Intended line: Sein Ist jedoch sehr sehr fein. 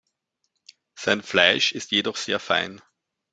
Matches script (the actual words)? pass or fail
fail